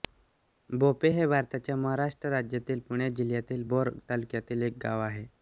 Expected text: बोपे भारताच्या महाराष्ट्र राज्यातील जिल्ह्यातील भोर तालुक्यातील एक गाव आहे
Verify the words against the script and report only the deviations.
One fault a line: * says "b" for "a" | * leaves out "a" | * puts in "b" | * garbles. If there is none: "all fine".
* puts in "हे"
* puts in "पुणे"